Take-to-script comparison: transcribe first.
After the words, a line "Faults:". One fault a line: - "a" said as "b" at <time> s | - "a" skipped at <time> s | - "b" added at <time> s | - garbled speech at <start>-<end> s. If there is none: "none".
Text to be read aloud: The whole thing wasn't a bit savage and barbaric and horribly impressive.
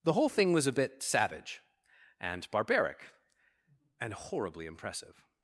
The whole thing was a bit savage and barbaric and horribly impressive.
Faults:
- "wasn't" said as "was" at 0.5 s